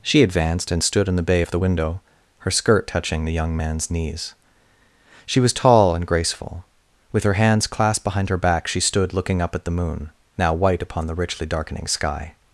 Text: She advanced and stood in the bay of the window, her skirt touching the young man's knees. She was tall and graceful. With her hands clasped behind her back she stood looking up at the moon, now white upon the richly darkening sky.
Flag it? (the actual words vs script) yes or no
no